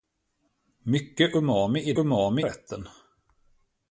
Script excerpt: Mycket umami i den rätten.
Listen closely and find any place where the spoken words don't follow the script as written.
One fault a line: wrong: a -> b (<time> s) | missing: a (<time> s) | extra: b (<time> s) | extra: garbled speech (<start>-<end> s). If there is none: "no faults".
wrong: den -> umami (2.0 s)